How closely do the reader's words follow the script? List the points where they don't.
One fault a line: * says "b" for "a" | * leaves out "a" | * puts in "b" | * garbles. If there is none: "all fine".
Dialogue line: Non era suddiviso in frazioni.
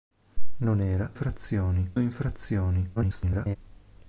* says "frazioni" for "suddiviso"
* garbles